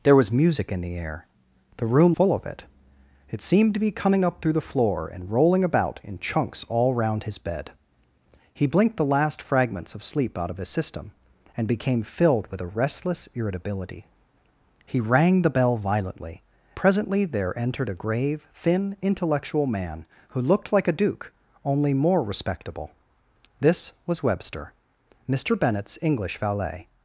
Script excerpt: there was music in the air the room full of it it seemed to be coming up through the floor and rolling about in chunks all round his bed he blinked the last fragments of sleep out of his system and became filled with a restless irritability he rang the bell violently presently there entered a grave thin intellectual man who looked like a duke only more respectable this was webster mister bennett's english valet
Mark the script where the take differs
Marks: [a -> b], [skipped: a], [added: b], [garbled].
there was music in the air the room full of it it seemed to be coming up through the floor and rolling about in chunks all round his bed he blinked the last fragments of sleep out of his system and became filled with a restless irritability he rang the bell violently presently there entered a grave thin intellectual man who looked like a duke only more respectable this was webster mister bennett's english valet